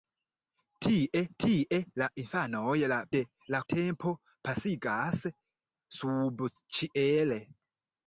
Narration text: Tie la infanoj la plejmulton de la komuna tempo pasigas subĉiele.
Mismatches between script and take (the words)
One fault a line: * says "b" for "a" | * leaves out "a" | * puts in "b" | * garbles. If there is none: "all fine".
* puts in "tie"
* leaves out "plejmulton"
* leaves out "komuna"